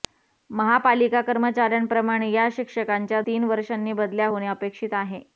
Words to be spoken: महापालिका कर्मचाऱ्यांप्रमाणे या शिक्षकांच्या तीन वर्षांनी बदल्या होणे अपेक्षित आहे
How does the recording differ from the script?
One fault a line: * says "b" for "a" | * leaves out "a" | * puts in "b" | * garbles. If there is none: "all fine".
all fine